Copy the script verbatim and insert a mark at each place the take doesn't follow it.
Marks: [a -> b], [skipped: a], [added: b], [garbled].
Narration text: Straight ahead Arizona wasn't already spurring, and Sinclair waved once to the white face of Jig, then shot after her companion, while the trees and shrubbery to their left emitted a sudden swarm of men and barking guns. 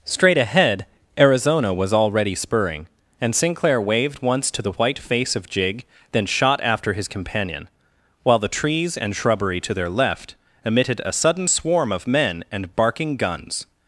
Straight ahead Arizona [wasn't -> was] already spurring, and Sinclair waved once to the white face of Jig, then shot after [her -> his] companion, while the trees and shrubbery to their left emitted a sudden swarm of men and barking guns.